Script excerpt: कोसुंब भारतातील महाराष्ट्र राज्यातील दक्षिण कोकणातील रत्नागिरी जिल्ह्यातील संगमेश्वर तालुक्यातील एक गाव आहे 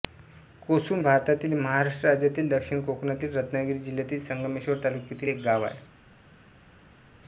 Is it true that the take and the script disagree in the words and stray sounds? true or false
false